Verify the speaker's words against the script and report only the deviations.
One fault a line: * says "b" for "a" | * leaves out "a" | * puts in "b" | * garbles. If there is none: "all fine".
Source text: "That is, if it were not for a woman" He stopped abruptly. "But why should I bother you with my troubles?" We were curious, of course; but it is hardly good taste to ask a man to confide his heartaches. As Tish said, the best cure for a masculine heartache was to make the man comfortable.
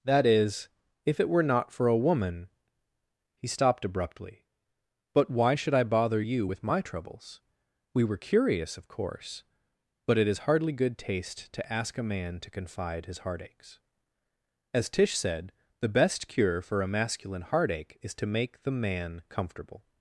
* says "is" for "was"